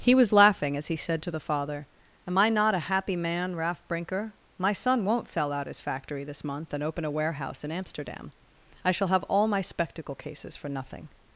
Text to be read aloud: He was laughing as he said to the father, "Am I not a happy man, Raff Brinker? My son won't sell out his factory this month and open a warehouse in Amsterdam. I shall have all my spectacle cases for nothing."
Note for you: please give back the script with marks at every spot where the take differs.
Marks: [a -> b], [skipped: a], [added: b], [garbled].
He was laughing as he said to the father, "Am I not a happy man, Raff Brinker? My son won't sell out his factory this month and open a warehouse in Amsterdam. I shall have all my spectacle cases for nothing."